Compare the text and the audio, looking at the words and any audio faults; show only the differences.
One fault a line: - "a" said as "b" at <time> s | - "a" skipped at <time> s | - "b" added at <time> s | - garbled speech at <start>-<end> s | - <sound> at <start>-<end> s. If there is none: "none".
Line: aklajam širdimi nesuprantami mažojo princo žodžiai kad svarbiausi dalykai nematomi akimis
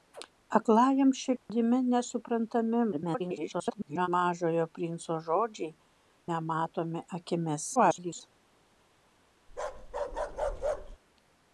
- dropout at 1.4-1.5 s
- garbled speech at 2.9-4.1 s
- "kad svarbiausi dalykai" skipped at 5.7 s
- garbled speech at 7.8-8.2 s
- bark at 9.5-11.0 s